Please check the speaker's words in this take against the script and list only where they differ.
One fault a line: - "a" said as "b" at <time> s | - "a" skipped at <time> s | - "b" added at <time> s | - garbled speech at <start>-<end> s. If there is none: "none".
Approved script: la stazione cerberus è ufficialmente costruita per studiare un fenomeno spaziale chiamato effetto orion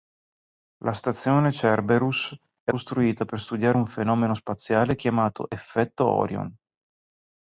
- "ufficialmente" skipped at 2.7 s